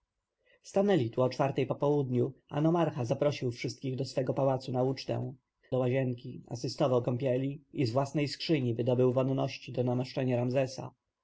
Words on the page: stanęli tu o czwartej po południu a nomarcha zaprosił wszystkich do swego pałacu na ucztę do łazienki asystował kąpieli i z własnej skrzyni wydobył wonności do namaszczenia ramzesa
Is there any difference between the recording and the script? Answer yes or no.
no